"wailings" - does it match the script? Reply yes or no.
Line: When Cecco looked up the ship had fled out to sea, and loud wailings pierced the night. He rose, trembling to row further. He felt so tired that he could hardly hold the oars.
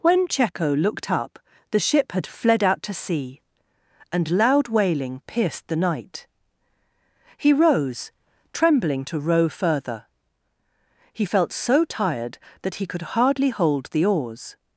no